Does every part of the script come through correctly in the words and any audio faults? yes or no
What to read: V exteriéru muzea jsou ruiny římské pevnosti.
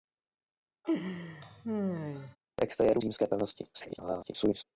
no